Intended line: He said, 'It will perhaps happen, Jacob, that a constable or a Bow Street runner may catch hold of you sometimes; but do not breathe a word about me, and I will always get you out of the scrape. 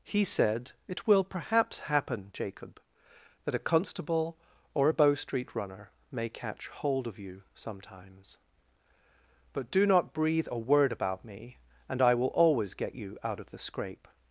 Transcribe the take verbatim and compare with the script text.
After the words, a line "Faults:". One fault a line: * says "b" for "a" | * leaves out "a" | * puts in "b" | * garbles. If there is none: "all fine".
He said, 'It will perhaps happen, Jacob, that a constable or a Bow Street runner may catch hold of you sometimes; but do not breathe a word about me, and I will always get you out of the scrape.
Faults:
all fine